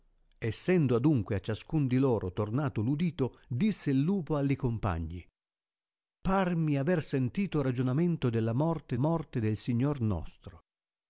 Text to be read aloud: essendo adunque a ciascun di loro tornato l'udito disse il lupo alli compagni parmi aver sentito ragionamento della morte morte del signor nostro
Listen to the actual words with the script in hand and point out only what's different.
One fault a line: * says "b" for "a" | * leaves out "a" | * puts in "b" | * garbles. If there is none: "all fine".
all fine